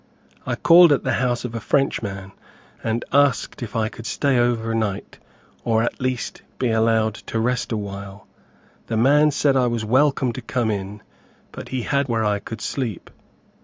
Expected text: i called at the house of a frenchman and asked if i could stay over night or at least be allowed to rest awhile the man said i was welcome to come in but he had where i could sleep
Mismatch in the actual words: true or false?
false